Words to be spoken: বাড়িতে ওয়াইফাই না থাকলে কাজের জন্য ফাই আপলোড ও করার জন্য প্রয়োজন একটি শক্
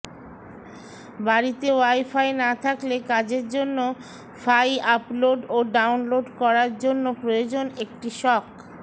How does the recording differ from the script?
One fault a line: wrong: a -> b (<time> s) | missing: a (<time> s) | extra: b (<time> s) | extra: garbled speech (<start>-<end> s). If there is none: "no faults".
extra: ডাউনলোড (5.7 s)